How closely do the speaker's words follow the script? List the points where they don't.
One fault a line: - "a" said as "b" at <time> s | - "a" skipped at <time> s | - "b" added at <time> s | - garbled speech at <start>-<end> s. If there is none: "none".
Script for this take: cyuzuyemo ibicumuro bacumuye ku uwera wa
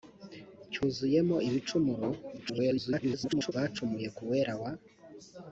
- garbled speech at 2.4-3.5 s